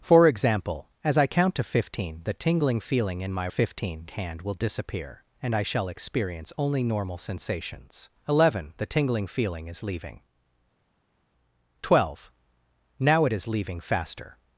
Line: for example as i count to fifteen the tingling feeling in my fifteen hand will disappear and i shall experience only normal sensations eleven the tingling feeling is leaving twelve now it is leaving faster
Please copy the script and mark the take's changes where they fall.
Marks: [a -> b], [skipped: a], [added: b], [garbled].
for example as i count to fifteen the tingling feeling in my fifteen hand will disappear and i shall experience only normal sensations eleven the tingling feeling is leaving twelve now it is leaving faster